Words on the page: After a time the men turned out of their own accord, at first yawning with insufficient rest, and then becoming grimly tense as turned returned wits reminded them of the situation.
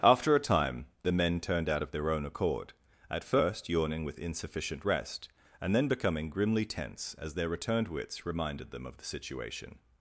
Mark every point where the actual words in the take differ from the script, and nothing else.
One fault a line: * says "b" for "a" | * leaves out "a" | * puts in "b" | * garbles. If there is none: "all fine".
* says "their" for "turned"